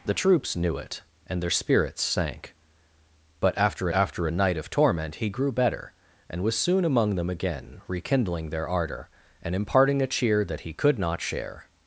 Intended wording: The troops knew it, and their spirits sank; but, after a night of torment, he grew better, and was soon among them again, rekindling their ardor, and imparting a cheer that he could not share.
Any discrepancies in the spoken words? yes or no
yes